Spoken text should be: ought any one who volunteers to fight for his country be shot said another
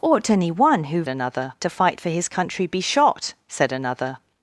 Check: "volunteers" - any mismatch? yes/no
yes